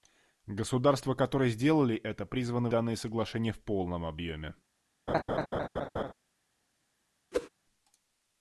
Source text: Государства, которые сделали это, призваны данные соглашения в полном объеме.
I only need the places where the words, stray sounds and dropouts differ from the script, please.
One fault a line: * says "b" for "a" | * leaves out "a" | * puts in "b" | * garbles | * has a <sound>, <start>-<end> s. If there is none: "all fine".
* has a laugh, 5.1-6.1 s
* has a whoosh, 7.3-7.5 s